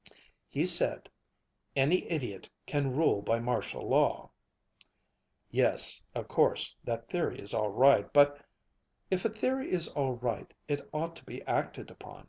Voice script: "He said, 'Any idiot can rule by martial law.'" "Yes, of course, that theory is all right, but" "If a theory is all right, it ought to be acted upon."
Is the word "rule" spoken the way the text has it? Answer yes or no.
yes